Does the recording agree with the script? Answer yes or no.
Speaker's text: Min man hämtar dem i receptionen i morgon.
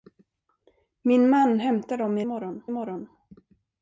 no